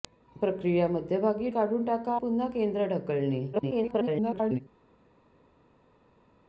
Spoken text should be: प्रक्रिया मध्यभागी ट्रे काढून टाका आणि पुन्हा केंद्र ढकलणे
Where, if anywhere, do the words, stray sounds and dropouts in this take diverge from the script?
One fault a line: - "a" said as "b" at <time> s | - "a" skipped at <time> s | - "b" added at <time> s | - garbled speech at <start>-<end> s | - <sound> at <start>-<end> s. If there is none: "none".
- "ट्रे" skipped at 1.5 s
- "आणि" skipped at 2.1 s
- garbled speech at 3.5-4.6 s